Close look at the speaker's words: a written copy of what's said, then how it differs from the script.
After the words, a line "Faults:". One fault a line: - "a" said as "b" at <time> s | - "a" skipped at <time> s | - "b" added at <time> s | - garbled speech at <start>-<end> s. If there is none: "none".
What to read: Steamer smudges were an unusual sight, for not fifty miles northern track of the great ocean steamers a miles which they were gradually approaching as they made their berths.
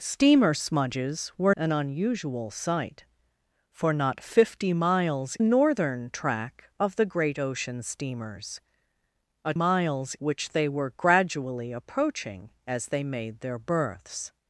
Steamer smudges were an unusual sight, for not fifty miles northern track of the great ocean steamers a miles which they were gradually approaching as they made their berths.
Faults:
none